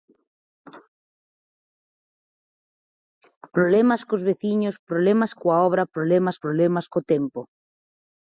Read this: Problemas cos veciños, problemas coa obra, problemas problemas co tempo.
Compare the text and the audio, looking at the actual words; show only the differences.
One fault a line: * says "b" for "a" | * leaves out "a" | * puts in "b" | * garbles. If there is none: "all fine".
all fine